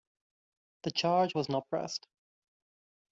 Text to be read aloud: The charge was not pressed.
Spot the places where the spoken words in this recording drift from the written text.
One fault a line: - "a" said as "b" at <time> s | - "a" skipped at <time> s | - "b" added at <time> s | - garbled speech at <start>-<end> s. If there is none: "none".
none